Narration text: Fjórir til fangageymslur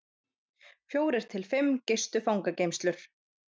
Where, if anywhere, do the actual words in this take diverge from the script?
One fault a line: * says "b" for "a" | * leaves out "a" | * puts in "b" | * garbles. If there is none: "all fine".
* puts in "fimm gistu"